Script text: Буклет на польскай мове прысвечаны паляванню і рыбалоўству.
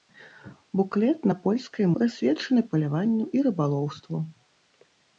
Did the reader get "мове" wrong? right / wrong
wrong